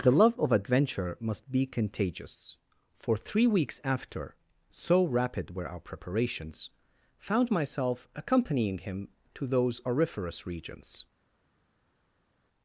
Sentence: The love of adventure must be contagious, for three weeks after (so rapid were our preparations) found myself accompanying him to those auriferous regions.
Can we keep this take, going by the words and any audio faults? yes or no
yes